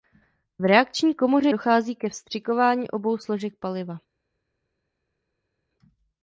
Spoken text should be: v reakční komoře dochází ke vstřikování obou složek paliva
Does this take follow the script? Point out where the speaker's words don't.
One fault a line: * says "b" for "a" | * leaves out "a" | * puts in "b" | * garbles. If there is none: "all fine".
all fine